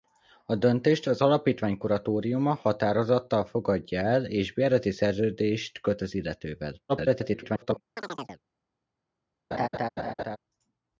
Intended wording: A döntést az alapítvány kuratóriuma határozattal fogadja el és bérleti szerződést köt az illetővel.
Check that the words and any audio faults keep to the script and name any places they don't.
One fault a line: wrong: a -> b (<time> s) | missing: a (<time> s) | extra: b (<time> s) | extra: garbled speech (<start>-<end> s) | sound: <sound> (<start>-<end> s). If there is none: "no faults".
extra: garbled speech (6.9-7.8 s)
sound: chirp (8.0-8.4 s)
sound: laugh (9.5-10.4 s)